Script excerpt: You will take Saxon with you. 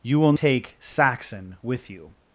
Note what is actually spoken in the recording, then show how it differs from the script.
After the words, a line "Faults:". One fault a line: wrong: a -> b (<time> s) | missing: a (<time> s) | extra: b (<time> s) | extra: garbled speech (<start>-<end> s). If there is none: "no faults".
You will take Saxon with you.
Faults:
no faults